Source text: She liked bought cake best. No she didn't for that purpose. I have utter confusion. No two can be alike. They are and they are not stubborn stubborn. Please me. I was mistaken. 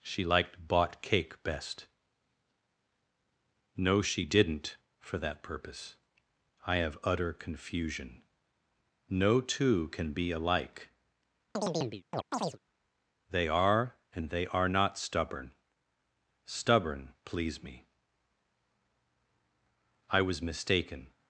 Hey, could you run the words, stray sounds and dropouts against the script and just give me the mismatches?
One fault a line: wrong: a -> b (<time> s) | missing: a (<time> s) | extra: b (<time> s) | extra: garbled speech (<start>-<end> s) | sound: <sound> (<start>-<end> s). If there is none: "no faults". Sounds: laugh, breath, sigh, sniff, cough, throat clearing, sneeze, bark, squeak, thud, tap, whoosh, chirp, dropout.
sound: chirp (11.5-12.6 s)